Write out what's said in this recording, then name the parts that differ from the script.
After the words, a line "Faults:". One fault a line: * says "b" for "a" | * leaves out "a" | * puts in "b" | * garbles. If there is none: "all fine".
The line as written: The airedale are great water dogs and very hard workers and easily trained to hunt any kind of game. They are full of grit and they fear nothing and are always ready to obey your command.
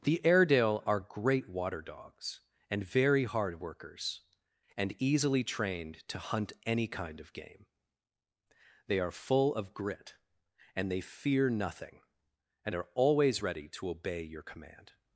The airedale are great water dogs and very hard workers and easily trained to hunt any kind of game. They are full of grit and they fear nothing and are always ready to obey your command.
Faults:
all fine